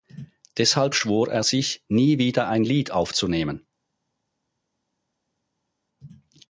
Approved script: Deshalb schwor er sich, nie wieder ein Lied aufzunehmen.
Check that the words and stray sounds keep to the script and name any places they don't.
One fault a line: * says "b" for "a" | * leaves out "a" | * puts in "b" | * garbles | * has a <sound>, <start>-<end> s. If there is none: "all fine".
all fine